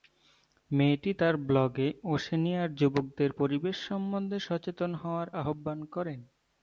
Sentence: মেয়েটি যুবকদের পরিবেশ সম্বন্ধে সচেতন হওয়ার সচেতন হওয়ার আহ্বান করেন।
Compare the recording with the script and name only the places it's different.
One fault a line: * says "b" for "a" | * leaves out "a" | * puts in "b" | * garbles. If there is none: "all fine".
* puts in "তার ব্লগে ওশেনিয়ার"
* leaves out "সচেতন হওয়ার"